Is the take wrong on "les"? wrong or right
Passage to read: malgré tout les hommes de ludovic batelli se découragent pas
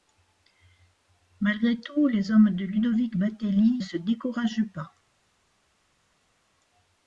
right